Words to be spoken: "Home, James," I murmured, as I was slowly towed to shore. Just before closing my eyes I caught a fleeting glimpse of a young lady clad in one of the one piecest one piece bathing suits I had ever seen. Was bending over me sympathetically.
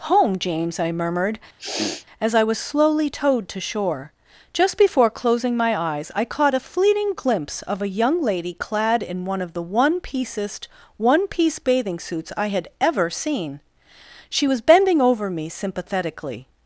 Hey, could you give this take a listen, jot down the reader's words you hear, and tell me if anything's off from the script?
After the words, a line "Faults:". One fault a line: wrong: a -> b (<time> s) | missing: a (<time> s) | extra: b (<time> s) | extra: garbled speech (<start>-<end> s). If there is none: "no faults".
"Home, James," I murmured, as I was slowly towed to shore. Just before closing my eyes I caught a fleeting glimpse of a young lady clad in one of the one piecest one piece bathing suits I had ever seen. She was bending over me sympathetically.
Faults:
extra: She (14.3 s)